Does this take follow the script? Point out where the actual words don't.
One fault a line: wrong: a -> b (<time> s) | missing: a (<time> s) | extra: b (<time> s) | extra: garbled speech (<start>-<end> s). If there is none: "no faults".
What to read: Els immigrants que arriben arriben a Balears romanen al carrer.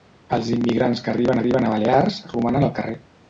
no faults